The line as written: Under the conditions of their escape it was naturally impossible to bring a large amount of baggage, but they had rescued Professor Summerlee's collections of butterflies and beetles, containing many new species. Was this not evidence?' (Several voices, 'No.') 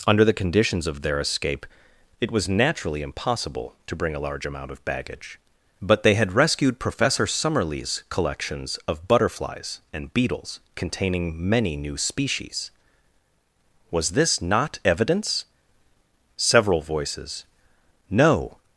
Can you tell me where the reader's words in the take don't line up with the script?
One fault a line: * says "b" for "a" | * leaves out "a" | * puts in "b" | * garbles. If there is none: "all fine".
all fine